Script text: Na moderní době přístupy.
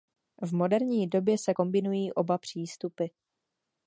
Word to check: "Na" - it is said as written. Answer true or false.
false